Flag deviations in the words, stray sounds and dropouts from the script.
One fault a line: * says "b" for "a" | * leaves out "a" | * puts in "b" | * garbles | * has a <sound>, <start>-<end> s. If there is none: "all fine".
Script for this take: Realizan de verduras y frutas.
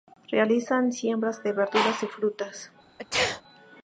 * puts in "siembras"
* has a sneeze, 3.0-3.4 s